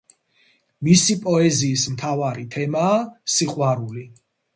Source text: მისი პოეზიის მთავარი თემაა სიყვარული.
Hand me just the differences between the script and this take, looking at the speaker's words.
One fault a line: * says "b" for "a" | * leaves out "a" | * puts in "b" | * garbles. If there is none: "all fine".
all fine